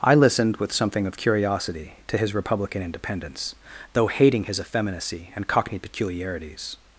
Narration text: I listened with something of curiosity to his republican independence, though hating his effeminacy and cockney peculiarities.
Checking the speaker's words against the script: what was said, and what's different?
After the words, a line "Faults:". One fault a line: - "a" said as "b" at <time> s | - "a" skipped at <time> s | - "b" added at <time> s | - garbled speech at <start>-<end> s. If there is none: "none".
I listened with something of curiosity to his republican independence, though hating his effeminacy and cockney peculiarities.
Faults:
none